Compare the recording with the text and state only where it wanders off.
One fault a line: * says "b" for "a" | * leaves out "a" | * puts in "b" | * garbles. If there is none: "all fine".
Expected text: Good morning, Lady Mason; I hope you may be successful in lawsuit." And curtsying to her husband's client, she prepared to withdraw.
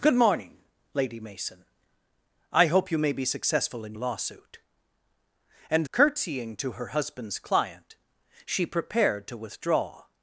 all fine